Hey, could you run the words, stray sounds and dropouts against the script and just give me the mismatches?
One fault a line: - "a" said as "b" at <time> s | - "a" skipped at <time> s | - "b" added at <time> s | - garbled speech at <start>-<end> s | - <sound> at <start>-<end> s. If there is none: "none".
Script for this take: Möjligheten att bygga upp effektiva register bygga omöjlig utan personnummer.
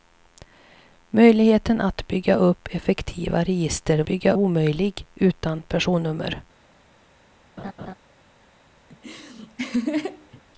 - laugh at 7.6-7.9 s
- laugh at 8.9-10.4 s